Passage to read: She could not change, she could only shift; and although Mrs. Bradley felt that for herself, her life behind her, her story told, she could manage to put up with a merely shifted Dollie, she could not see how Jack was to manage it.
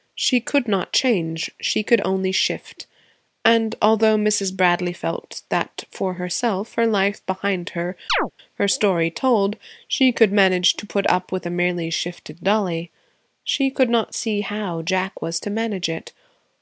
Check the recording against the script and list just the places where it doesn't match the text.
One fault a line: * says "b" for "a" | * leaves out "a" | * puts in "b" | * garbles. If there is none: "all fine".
all fine